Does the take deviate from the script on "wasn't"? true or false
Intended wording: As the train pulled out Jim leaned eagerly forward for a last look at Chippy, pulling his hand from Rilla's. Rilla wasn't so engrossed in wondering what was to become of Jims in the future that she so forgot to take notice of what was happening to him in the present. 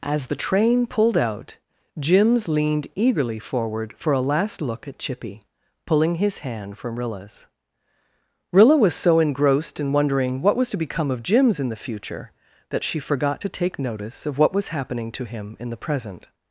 true